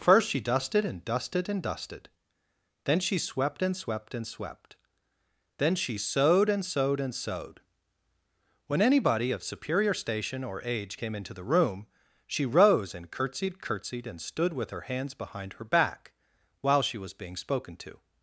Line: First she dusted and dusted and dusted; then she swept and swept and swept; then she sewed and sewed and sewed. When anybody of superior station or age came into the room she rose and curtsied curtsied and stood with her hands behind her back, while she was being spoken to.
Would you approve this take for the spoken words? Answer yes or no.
yes